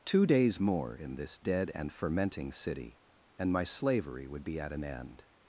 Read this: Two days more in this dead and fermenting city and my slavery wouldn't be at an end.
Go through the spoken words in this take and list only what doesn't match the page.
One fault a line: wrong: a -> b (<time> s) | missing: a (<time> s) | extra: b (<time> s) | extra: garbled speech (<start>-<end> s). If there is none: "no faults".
wrong: wouldn't -> would (4.3 s)